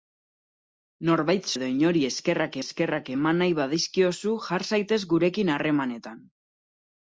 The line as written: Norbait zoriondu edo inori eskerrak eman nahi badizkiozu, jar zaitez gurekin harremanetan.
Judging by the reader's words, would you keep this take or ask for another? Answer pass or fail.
fail